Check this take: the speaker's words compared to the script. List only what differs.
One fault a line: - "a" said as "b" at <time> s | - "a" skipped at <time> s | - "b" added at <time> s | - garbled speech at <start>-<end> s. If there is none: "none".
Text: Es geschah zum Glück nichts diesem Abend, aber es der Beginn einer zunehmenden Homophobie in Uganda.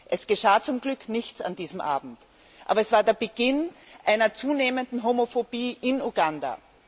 - "an" added at 1.4 s
- "war" added at 2.9 s